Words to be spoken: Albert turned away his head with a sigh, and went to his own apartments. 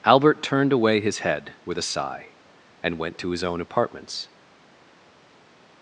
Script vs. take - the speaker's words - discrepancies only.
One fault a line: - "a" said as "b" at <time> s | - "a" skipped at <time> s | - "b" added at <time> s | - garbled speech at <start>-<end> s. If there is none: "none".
none